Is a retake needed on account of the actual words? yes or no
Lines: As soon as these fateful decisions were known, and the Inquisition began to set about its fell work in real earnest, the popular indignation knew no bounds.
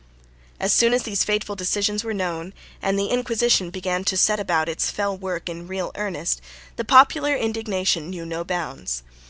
no